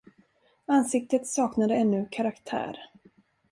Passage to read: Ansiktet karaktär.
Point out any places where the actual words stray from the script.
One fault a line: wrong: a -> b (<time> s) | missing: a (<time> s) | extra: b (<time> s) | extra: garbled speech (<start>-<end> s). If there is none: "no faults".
extra: saknade ännu (1.3 s)